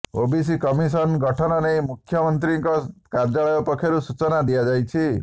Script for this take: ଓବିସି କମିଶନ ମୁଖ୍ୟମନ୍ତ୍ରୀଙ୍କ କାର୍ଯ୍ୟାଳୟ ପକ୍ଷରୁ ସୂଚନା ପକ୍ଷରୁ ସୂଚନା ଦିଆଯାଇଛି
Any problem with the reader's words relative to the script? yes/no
yes